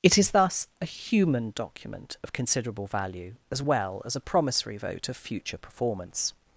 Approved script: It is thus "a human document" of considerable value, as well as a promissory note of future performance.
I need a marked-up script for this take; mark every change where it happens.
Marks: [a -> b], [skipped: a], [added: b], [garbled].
It is thus "a human document" of considerable value, as well as a promissory [note -> vote] of future performance.